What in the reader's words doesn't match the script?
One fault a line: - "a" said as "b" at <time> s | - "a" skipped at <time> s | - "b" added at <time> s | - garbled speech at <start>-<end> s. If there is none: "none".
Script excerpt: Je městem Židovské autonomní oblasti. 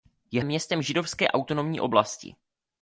none